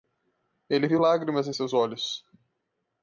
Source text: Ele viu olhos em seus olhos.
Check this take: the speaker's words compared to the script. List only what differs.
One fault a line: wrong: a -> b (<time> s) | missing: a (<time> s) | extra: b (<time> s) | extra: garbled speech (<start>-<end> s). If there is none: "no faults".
wrong: olhos -> lágrimas (0.9 s)